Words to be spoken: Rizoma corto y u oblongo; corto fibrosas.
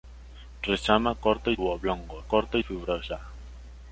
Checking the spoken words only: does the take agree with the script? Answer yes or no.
yes